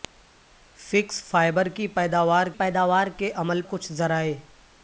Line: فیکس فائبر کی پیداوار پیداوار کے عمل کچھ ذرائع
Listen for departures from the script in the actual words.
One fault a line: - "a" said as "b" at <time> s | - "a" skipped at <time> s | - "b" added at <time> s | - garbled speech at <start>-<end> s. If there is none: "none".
none